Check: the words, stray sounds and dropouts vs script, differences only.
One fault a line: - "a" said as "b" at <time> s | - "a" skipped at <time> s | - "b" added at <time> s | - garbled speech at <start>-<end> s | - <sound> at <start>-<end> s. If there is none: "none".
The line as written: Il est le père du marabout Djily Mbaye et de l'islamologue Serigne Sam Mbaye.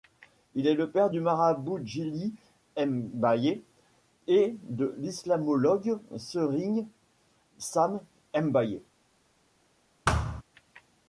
- thud at 10.1-10.4 s